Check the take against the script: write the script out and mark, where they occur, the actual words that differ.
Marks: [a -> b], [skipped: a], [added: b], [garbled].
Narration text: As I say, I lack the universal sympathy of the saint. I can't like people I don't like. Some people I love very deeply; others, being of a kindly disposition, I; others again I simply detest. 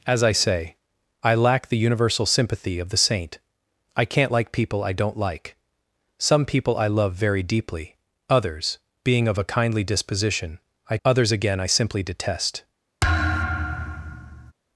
As I say, I lack the universal sympathy of the saint. I can't like people I don't like. Some people I love very deeply; others, being of a kindly disposition, I; others again I simply detest.